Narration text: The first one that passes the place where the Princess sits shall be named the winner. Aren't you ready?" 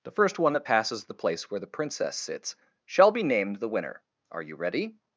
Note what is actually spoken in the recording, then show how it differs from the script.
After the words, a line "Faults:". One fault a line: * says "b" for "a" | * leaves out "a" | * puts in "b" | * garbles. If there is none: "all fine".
The first one that passes the place where the Princess sits shall be named the winner. Are you ready?"
Faults:
* says "Are" for "Aren't"